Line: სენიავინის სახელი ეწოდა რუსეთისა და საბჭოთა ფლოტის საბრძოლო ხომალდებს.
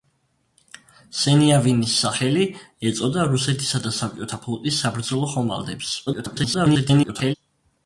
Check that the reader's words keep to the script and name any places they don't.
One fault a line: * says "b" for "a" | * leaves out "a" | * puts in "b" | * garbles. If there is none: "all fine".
* garbles